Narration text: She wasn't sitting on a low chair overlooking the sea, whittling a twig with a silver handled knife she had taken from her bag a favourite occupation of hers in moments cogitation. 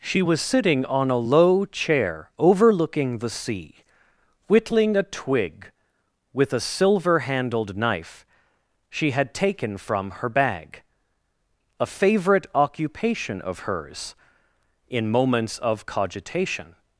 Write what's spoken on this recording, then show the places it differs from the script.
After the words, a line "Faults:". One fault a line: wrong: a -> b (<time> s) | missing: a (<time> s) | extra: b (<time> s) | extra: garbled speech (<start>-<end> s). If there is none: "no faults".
She was sitting on a low chair overlooking the sea, whittling a twig with a silver handled knife she had taken from her bag a favourite occupation of hers in moments of cogitation.
Faults:
wrong: wasn't -> was (0.2 s)
extra: of (15.6 s)